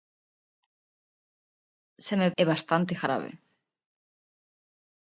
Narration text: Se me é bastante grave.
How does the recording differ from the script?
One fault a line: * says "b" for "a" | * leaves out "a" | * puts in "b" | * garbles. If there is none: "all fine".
all fine